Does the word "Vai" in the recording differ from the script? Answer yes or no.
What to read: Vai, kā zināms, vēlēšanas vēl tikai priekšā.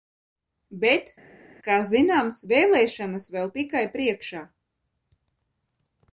yes